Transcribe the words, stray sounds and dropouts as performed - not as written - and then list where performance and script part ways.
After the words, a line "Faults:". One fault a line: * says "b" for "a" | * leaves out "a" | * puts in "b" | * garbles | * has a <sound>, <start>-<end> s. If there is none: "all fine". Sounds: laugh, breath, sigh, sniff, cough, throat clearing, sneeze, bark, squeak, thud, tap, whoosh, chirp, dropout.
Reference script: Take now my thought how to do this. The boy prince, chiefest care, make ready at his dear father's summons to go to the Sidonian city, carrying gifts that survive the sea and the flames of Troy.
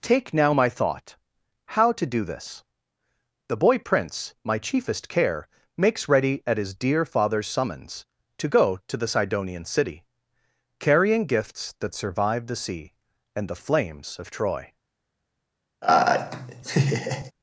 Take now my thought how to do this. The boy prince, my chiefest care, makes ready at his dear father's summons to go to the Sidonian city, carrying gifts that survive the sea and the flames of Troy.
Faults:
* puts in "my"
* says "makes" for "make"
* has a laugh, 15.8-17.3 s